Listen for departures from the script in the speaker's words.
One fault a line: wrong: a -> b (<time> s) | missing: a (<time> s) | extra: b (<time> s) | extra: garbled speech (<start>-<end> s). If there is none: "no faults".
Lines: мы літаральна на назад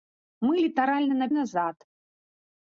no faults